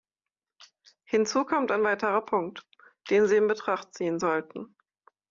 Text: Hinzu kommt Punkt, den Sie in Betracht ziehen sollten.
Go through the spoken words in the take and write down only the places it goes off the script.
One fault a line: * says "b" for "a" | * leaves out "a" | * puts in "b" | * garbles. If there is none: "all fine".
* puts in "ein weiterer"